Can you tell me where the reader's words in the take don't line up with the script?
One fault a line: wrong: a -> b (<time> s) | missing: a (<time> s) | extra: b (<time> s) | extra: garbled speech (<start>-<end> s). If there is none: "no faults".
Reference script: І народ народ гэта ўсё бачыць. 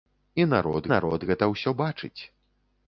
no faults